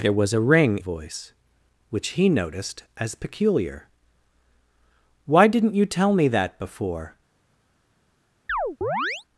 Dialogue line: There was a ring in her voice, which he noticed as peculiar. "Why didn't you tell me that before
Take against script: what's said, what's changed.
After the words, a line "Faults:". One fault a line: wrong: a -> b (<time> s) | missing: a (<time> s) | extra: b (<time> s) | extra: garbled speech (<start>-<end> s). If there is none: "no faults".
There was a ring voice, which he noticed as peculiar. "Why didn't you tell me that before
Faults:
missing: in her (0.8 s)